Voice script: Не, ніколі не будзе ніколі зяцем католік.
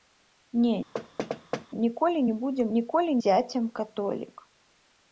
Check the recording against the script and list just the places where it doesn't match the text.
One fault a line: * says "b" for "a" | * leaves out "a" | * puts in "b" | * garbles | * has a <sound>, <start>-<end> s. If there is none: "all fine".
* has a thud, 0.9-1.7 s